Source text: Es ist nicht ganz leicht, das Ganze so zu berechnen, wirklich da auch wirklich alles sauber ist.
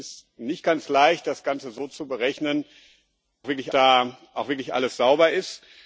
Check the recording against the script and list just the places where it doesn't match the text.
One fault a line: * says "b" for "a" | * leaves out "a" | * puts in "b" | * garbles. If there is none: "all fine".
all fine